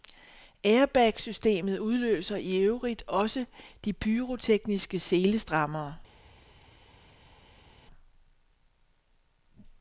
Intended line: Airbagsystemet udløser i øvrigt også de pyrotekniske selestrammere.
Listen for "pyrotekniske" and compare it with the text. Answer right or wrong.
right